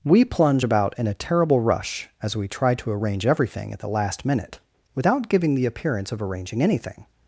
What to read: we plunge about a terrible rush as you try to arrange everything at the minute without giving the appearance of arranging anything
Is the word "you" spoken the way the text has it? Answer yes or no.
no